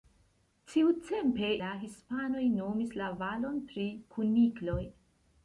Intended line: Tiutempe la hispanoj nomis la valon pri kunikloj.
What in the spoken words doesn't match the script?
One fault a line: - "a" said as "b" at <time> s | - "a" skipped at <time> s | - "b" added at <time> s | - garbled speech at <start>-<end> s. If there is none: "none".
none